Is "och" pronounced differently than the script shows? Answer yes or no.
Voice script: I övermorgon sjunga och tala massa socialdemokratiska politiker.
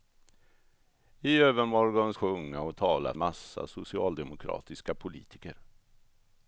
no